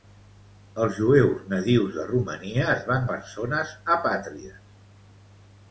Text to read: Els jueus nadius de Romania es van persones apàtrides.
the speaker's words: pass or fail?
pass